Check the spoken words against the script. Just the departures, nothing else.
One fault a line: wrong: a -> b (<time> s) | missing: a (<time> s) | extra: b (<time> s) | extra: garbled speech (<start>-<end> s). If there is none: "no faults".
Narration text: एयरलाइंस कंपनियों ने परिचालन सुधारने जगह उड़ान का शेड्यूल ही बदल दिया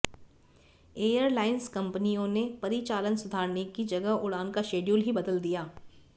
extra: की (3.8 s)